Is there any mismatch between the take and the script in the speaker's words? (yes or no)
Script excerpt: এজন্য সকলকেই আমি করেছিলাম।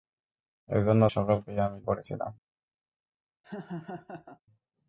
no